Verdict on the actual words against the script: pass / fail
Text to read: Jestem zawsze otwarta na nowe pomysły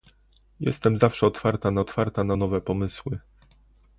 fail